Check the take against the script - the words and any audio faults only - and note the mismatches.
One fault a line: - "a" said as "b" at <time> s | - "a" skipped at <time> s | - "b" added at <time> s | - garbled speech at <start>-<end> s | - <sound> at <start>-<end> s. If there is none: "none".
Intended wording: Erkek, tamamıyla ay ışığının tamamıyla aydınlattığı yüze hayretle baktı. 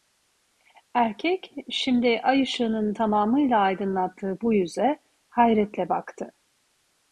- "tamamıyla" said as "şimdi" at 1.7 s
- "bu" added at 4.4 s